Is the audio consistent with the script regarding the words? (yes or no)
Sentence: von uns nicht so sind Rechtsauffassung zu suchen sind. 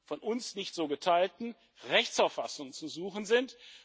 no